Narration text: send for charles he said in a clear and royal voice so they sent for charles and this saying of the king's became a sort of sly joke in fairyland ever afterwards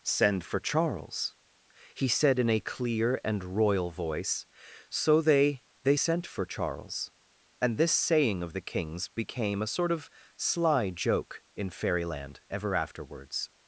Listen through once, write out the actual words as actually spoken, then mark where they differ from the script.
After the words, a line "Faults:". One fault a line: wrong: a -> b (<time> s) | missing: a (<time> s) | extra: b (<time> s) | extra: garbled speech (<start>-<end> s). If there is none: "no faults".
send for charles he said in a clear and royal voice so they they sent for charles and this saying of the king's became a sort of sly joke in fairyland ever afterwards
Faults:
extra: they (5.8 s)